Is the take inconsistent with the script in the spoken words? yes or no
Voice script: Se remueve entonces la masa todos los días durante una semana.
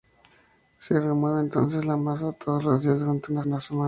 yes